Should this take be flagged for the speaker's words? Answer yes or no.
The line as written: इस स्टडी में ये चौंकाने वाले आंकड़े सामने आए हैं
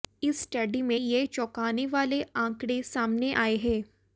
no